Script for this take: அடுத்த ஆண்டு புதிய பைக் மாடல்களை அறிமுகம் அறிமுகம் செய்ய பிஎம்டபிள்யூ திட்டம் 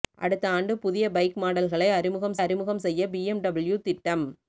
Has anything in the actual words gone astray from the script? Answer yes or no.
no